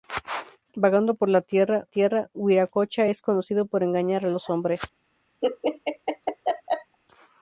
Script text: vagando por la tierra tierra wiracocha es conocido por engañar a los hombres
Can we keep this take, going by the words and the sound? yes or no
no